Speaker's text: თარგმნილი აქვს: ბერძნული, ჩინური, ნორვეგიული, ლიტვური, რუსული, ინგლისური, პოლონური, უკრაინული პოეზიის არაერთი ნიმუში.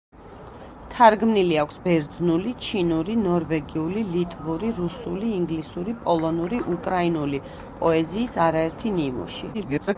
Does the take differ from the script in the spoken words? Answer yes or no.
yes